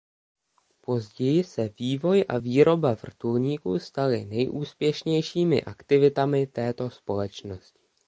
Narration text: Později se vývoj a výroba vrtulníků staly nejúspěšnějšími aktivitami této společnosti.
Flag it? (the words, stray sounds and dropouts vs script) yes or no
no